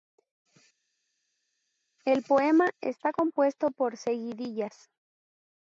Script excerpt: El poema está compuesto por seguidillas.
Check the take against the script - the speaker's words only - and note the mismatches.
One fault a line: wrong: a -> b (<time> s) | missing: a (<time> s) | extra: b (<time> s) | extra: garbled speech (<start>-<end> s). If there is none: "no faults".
no faults